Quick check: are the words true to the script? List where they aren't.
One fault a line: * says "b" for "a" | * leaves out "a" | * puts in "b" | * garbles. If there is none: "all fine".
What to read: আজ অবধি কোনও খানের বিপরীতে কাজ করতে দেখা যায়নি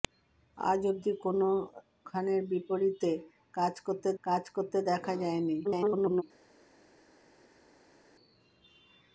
* puts in "কাজ করতে"
* garbles